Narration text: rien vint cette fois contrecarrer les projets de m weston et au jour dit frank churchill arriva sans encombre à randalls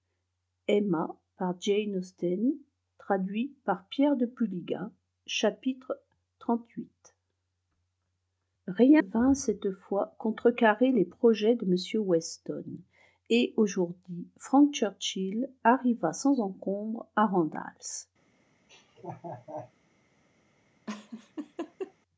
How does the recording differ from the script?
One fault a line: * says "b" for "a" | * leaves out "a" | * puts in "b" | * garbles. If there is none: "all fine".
all fine